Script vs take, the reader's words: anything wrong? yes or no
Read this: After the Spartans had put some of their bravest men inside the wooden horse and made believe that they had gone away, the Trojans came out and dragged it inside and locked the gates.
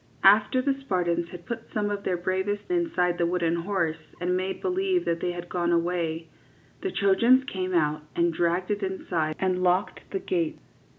yes